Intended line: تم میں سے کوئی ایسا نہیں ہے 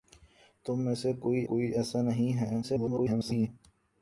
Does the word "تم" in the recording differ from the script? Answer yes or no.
no